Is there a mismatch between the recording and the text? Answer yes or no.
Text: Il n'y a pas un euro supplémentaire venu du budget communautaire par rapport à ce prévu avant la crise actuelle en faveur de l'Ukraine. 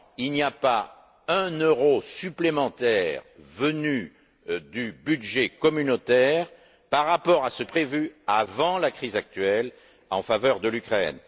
no